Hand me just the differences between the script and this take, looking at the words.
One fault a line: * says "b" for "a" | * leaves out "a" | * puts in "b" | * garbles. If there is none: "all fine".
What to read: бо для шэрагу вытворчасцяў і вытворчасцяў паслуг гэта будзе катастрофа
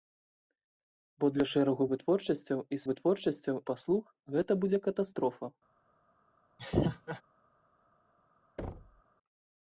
all fine